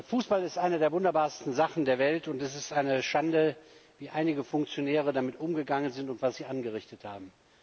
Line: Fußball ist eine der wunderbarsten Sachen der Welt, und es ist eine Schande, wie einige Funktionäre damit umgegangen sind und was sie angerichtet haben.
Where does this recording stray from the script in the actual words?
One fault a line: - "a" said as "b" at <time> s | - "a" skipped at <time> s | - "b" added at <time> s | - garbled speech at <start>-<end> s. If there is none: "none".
none